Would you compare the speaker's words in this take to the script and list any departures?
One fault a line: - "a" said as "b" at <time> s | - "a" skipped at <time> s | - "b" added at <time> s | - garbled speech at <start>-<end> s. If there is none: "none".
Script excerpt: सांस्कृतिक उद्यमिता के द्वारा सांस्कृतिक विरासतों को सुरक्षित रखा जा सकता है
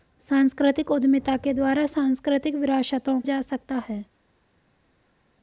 - "को सुरक्षित रखा" skipped at 3.2 s